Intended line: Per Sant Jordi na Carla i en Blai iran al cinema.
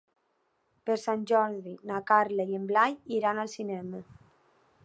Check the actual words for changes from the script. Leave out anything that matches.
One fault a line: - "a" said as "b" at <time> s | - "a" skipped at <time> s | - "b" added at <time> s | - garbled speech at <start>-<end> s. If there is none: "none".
none